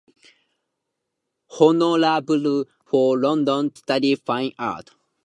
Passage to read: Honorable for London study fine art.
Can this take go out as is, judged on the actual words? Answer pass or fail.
pass